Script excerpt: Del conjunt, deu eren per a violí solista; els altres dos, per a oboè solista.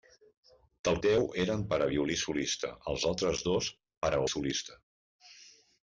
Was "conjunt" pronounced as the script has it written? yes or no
no